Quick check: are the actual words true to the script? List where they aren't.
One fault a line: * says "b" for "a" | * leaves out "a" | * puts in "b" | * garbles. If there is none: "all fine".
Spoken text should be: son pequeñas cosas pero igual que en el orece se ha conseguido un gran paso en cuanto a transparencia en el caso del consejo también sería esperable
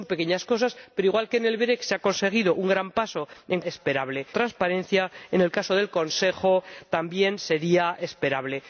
* says "esperable" for "cuanto"